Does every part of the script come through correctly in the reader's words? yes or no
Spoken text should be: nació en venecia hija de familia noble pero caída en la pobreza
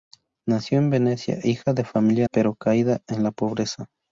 no